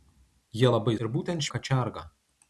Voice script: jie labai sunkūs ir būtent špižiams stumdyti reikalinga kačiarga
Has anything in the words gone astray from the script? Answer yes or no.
yes